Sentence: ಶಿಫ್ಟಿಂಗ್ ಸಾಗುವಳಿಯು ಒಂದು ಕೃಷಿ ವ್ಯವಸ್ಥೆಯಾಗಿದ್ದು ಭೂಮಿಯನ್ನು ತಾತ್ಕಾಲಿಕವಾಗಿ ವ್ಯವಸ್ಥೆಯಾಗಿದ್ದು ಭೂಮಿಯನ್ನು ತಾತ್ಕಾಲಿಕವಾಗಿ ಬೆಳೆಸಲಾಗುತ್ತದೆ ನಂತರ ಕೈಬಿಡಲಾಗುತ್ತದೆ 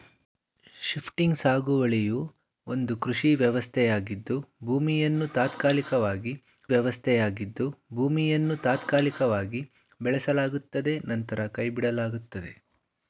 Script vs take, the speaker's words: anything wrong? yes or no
no